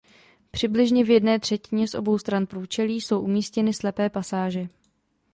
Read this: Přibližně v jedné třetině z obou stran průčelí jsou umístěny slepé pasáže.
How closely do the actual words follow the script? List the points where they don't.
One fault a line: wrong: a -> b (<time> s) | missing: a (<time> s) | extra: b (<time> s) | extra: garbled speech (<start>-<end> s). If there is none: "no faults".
no faults